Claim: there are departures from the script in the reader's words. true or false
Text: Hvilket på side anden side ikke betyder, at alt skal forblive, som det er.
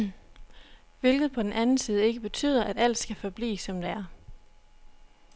true